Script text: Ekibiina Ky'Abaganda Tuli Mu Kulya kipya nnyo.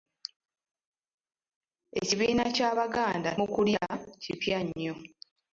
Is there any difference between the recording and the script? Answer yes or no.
yes